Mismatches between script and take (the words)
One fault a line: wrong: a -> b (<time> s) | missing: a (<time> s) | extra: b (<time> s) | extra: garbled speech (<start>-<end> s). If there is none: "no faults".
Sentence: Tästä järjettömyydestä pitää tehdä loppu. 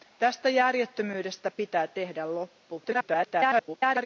extra: garbled speech (2.8-4.1 s)